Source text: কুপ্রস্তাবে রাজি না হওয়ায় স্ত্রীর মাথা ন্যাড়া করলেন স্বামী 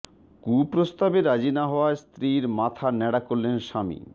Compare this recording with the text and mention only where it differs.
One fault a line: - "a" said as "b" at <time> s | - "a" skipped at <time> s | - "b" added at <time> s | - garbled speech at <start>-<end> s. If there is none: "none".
none